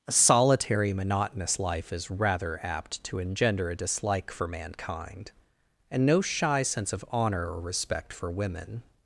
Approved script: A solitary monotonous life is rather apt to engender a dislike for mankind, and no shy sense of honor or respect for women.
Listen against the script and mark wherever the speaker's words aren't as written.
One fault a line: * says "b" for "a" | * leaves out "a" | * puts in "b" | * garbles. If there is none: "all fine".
all fine